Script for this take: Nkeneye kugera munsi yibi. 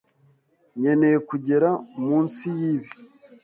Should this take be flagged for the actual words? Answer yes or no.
no